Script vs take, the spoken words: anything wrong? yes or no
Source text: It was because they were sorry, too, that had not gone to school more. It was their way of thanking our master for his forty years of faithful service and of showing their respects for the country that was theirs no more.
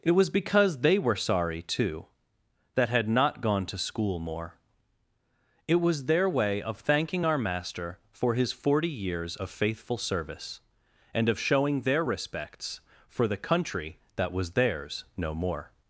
no